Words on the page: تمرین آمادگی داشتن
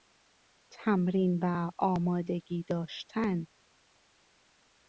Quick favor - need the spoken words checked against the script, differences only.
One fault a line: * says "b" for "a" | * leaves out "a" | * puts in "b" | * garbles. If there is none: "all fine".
* puts in "و"